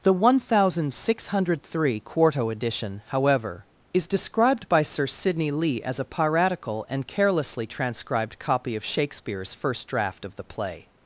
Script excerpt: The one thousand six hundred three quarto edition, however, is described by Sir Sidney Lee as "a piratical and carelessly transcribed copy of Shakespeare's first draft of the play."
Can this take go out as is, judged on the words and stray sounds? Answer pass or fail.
pass